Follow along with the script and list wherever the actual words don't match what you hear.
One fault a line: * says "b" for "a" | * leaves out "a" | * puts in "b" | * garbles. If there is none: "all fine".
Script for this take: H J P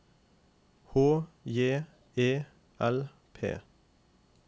* puts in "E L"